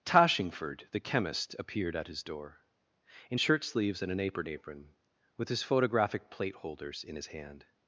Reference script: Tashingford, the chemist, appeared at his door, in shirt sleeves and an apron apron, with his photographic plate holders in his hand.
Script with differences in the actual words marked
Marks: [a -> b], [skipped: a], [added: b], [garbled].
Tashingford, the chemist, appeared at his door, in shirt sleeves and an apron apron, with his photographic plate holders in his hand.